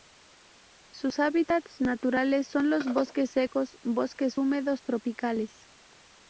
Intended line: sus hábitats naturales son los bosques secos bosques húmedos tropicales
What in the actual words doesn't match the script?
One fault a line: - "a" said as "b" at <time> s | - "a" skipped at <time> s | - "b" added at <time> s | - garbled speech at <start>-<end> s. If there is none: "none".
none